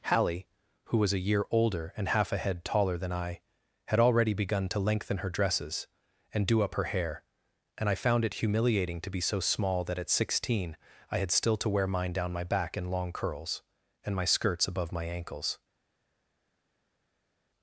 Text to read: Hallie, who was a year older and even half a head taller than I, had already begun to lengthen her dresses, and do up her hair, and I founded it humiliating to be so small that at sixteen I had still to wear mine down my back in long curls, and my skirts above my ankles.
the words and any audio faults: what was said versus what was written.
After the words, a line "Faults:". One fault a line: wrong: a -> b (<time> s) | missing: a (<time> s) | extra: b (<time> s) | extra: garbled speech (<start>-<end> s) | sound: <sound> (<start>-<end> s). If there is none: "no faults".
Hallie, who was a year older and half a head taller than I, had already begun to lengthen her dresses, and do up her hair, and I found it humiliating to be so small that at sixteen I had still to wear mine down my back in long curls, and my skirts above my ankles.
Faults:
missing: even (2.1 s)
wrong: founded -> found (8.0 s)